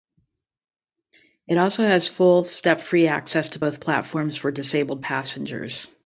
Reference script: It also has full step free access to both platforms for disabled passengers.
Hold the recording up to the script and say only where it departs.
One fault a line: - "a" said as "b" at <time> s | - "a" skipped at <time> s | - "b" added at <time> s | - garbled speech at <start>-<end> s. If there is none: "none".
none